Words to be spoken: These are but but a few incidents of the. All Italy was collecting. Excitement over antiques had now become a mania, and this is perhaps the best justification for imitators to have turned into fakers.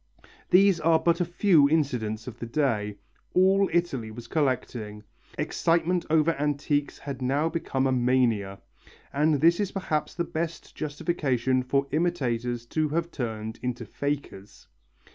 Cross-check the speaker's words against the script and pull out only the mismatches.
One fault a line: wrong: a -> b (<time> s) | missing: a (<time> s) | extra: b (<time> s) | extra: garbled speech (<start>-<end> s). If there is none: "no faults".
missing: but (1.2 s)
extra: day (2.5 s)